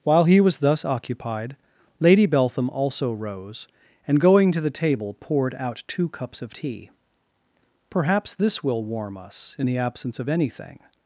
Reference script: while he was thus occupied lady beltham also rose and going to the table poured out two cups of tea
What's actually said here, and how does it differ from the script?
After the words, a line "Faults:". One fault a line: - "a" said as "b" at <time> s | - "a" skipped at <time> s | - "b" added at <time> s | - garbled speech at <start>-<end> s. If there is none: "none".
while he was thus occupied lady beltham also rose and going to the table poured out two cups of tea perhaps this will warm us in the absence of anything
Faults:
- "perhaps this will warm us in the absence of anything" added at 7.9 s